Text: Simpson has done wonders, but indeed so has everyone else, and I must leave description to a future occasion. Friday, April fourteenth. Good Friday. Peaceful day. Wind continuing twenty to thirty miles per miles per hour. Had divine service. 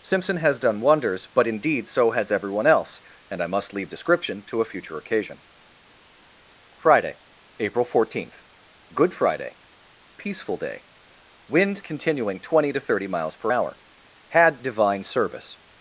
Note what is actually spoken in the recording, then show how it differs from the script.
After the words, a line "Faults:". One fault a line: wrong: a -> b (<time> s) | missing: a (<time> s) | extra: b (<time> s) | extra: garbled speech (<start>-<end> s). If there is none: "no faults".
Simpson has done wonders, but indeed so has everyone else, and I must leave description to a future occasion. Friday, April fourteenth. Good Friday. Peaceful day. Wind continuing twenty to thirty miles per hour. Had divine service.
Faults:
missing: miles per (13.5 s)